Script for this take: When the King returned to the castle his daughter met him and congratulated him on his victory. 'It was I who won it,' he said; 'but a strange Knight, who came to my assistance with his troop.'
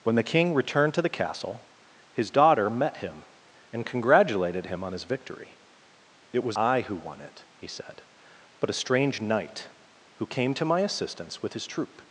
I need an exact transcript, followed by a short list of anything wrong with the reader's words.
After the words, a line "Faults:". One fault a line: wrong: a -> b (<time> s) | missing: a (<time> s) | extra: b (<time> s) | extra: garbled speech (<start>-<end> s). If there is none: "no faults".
When the King returned to the castle his daughter met him and congratulated him on his victory. 'It was I who won it,' he said; 'but a strange Knight, who came to my assistance with his troop.'
Faults:
no faults